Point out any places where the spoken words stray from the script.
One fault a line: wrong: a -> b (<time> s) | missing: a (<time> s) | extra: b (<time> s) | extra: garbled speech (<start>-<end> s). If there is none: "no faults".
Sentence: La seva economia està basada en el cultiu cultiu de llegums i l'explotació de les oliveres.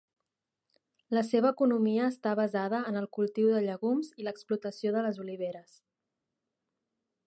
missing: cultiu (3.5 s)